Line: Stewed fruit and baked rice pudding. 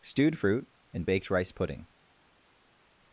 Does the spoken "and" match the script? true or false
true